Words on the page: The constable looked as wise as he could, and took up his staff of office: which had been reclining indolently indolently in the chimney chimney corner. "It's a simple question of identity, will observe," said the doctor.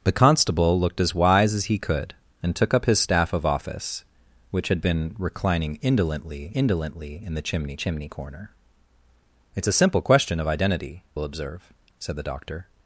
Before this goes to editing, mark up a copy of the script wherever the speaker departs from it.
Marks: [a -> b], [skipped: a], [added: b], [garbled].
The constable looked as wise as he could, and took up his staff of office: which had been reclining indolently indolently in the chimney chimney corner. "It's a simple question of identity, will observe," said the doctor.